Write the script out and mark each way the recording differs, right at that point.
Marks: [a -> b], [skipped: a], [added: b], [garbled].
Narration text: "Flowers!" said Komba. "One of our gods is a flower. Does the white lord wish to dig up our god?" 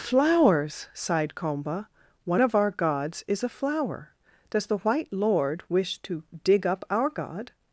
"Flowers!" [said -> sighed] Komba. "One of our gods is a flower. Does the white lord wish to dig up our god?"